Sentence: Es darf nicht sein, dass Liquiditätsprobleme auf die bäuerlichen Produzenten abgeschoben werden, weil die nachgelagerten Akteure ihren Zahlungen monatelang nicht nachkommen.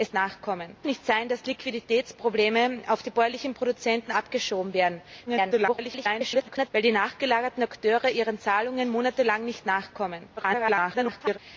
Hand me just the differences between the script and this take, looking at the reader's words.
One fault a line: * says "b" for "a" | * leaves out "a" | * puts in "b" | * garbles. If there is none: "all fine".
* says "nachkommen" for "darf"
* garbles
* garbles